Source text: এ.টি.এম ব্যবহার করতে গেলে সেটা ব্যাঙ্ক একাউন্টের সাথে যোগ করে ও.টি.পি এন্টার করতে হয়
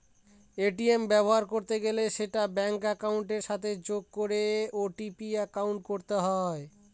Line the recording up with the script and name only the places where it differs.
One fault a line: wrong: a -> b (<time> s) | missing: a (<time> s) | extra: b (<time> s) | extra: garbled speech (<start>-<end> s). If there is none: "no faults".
no faults